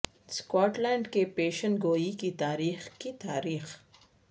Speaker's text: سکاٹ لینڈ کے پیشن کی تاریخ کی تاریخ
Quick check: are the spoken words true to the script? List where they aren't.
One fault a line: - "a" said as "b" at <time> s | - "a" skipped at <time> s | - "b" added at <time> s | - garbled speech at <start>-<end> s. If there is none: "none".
- "گوئی" added at 1.8 s